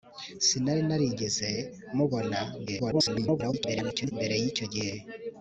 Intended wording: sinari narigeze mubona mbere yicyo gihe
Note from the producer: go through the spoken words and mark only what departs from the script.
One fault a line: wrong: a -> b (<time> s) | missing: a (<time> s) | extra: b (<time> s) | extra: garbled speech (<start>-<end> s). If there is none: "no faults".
extra: garbled speech (2.7-4.1 s)